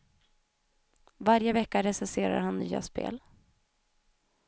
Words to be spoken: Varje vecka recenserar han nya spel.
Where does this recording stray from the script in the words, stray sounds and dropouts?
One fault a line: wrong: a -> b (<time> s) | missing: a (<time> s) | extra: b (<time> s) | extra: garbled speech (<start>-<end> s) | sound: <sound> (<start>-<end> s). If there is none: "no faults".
no faults